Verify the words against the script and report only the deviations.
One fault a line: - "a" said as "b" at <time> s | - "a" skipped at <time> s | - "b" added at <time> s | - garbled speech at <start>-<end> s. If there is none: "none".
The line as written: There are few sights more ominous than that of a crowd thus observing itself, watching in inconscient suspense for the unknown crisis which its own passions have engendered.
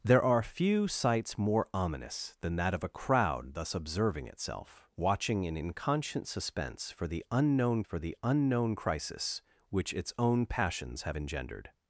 - "for the unknown" added at 7.8 s